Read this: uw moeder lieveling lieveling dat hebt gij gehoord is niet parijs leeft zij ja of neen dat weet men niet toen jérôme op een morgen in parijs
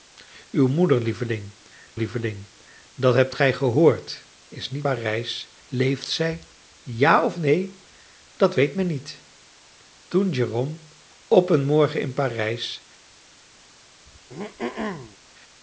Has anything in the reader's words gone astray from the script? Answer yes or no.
no